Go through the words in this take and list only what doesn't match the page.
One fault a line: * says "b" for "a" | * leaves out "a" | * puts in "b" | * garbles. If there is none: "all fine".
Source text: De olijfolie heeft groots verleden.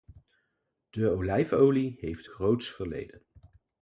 all fine